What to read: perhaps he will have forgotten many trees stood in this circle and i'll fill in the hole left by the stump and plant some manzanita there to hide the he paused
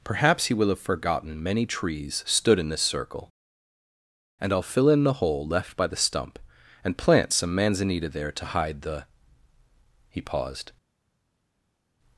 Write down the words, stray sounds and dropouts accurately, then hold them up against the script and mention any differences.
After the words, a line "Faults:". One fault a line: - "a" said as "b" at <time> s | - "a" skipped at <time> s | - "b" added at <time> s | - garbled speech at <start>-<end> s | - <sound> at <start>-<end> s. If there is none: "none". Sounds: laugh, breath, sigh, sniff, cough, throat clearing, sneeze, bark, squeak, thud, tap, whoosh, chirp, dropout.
perhaps he will have forgotten many trees stood in this circle and i'll fill in the hole left by the stump and plant some manzanita there to hide the he paused
Faults:
none